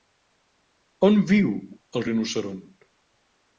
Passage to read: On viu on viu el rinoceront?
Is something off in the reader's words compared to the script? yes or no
yes